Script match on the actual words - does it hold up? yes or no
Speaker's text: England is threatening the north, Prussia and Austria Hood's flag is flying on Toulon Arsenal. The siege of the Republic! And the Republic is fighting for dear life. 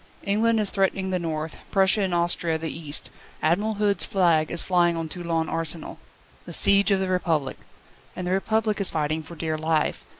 no